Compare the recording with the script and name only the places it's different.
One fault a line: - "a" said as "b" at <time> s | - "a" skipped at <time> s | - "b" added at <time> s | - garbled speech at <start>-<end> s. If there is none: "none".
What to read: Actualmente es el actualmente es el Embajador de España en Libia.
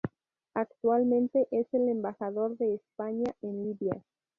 - "actualmente es el" skipped at 1.9 s